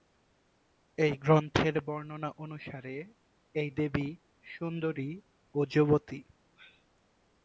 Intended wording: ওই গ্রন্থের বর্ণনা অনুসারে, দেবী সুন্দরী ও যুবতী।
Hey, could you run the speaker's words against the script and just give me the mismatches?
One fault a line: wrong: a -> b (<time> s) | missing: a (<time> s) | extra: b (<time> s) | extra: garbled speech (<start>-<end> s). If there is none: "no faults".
wrong: ওই -> এই (1.0 s)
extra: এই (3.6 s)